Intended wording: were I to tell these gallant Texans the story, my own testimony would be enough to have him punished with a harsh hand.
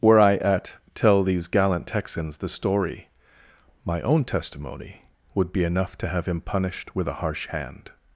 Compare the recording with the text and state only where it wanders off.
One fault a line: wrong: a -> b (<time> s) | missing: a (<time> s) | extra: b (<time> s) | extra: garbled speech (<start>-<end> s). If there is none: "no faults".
wrong: to -> at (0.4 s)